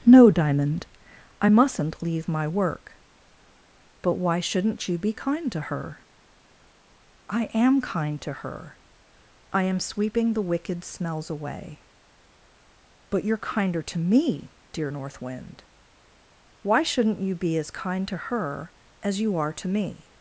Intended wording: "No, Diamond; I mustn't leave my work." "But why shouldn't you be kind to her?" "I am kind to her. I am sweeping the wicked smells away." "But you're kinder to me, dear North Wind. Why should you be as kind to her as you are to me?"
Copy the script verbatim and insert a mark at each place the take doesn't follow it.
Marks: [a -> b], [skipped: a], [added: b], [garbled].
"No, Diamond; I mustn't leave my work." "But why shouldn't you be kind to her?" "I am kind to her. I am sweeping the wicked smells away." "But you're kinder to me, dear North Wind. Why [should -> shouldn't] you be as kind to her as you are to me?"